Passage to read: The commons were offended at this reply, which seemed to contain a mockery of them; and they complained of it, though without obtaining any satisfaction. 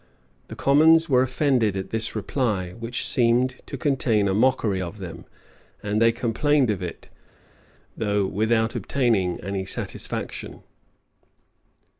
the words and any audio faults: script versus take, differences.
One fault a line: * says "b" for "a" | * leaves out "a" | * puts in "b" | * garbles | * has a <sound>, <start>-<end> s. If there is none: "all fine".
all fine